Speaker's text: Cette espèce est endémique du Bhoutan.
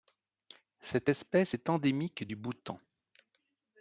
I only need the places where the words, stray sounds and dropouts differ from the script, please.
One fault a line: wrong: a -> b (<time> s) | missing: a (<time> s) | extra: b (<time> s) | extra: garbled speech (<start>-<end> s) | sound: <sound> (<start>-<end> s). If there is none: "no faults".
no faults